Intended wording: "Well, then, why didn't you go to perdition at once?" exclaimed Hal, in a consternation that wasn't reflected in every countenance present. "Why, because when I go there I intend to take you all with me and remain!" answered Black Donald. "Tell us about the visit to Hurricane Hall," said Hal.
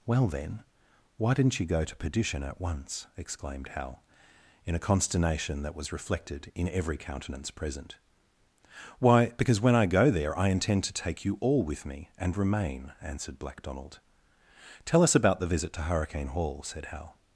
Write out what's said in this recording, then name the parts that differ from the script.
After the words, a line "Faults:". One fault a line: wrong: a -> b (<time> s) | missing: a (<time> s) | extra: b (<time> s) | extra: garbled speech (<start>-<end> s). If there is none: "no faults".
"Well, then, why didn't you go to perdition at once?" exclaimed Hal, in a consternation that was reflected in every countenance present. "Why, because when I go there I intend to take you all with me and remain!" answered Black Donald. "Tell us about the visit to Hurricane Hall," said Hal.
Faults:
wrong: wasn't -> was (5.8 s)